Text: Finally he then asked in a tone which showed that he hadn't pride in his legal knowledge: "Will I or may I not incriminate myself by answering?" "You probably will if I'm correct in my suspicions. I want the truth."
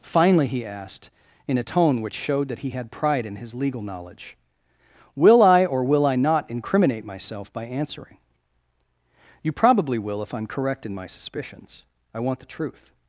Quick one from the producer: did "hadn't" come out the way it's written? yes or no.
no